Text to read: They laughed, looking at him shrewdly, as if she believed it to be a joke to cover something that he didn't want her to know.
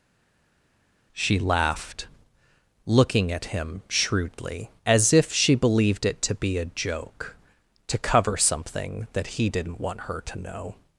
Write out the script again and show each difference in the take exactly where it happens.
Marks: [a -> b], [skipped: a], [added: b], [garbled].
[They -> She] laughed, looking at him shrewdly, as if she believed it to be a joke to cover something that he didn't want her to know.